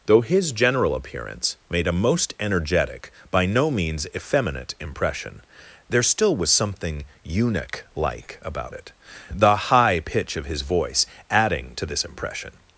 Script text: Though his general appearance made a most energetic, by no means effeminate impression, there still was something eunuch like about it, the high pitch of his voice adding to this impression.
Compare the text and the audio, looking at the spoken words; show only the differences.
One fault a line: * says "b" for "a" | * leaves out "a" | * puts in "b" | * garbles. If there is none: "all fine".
all fine